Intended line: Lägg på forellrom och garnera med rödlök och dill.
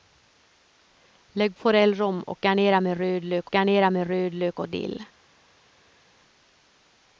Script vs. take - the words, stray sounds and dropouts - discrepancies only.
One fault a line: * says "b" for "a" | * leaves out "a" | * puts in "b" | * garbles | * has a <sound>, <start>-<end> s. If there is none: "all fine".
* leaves out "på"
* puts in "garnera med rödlök"